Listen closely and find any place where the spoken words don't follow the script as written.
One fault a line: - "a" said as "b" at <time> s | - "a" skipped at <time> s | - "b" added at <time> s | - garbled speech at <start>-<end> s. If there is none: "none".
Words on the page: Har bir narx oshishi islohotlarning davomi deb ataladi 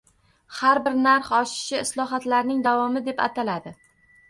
none